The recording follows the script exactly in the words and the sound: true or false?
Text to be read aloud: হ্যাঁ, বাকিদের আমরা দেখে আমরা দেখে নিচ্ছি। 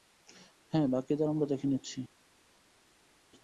false